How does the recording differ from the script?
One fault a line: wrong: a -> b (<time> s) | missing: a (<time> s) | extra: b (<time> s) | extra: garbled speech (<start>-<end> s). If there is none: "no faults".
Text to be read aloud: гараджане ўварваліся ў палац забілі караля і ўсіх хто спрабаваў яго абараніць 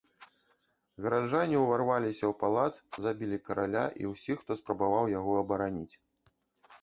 no faults